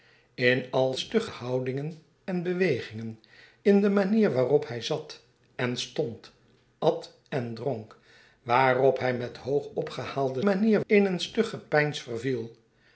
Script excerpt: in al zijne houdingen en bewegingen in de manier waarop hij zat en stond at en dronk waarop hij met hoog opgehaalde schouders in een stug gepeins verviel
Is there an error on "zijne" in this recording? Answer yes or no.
yes